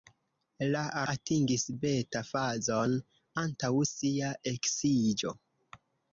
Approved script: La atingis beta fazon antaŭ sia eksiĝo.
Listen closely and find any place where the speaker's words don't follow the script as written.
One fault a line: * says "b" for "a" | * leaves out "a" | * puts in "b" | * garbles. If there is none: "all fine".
all fine